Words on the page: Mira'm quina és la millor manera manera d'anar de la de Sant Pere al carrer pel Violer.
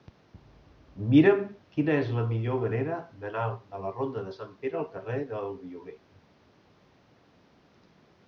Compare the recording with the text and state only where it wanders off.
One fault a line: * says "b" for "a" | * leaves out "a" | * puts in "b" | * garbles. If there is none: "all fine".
* leaves out "manera"
* puts in "ronda"
* says "del" for "pel"